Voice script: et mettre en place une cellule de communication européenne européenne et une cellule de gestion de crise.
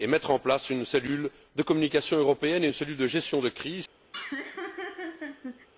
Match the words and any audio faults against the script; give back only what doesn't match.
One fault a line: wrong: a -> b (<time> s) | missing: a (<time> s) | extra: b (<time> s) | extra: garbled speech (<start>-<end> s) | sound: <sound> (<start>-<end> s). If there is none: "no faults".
missing: européenne (2.6 s)
sound: laugh (4.1-5.7 s)